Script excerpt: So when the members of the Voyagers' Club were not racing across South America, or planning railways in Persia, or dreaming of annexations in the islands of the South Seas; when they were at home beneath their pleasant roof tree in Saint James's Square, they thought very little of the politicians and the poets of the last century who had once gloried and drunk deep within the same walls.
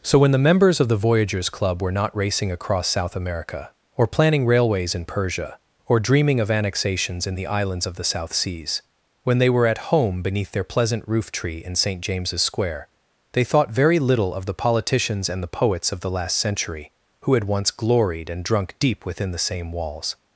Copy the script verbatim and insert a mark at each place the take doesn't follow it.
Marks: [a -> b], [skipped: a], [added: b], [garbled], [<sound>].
So when the members of the Voyagers' Club were not racing across South America, or planning railways in Persia, or dreaming of annexations in the islands of the South Seas; when they were at home beneath their pleasant roof tree in Saint James's Square, they thought very little of the politicians and the poets of the last century who had once gloried and drunk deep within the same walls.